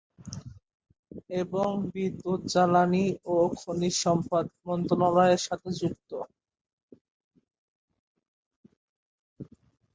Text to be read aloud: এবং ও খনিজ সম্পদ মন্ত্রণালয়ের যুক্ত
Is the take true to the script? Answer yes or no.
no